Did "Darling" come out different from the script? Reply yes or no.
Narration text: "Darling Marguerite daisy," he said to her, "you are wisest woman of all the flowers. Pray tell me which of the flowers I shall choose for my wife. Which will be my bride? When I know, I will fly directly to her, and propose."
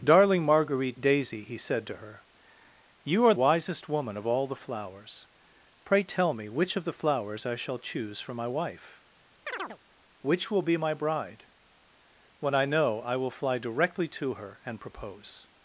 no